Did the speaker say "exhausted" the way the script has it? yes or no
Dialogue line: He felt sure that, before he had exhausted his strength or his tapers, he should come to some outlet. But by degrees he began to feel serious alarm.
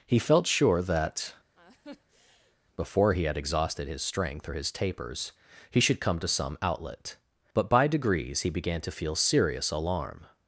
yes